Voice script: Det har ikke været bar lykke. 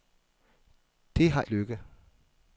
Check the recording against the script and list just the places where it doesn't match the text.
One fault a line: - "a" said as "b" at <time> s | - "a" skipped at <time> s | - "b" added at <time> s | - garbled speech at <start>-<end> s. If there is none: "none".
- "ikke været bar" skipped at 1.4 s